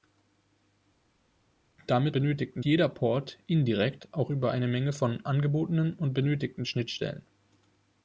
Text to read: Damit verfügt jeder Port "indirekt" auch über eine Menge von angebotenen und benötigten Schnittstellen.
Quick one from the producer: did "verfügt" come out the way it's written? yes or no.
no